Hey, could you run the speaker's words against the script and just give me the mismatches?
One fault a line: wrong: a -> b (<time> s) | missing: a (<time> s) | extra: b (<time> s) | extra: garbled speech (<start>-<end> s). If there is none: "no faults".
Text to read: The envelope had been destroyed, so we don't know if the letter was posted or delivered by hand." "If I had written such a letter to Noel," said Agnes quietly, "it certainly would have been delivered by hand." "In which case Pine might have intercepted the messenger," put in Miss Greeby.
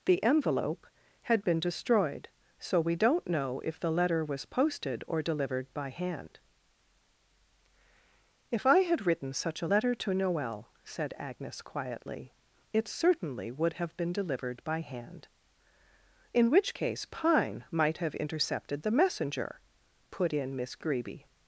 no faults